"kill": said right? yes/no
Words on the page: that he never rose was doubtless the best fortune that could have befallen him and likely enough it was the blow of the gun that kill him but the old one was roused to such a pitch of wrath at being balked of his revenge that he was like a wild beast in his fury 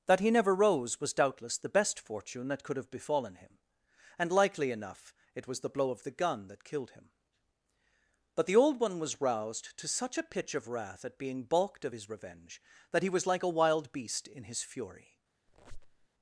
no